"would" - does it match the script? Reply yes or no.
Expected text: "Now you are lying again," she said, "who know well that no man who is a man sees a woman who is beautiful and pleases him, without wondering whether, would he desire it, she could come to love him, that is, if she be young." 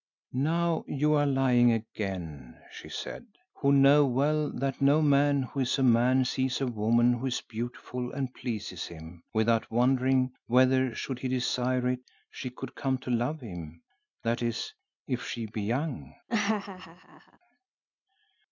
no